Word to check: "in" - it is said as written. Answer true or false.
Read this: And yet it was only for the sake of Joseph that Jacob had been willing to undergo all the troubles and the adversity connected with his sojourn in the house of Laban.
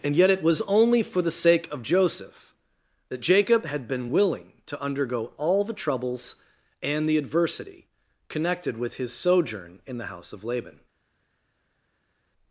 true